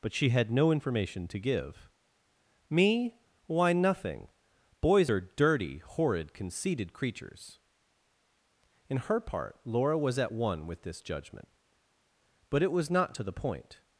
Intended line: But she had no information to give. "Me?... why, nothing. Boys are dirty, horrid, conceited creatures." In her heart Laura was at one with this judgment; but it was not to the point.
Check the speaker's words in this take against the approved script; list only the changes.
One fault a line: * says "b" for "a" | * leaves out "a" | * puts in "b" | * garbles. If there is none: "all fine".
* says "part" for "heart"